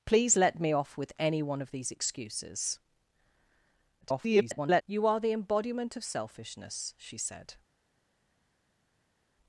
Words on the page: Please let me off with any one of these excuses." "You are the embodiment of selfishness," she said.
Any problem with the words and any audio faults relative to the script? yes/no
yes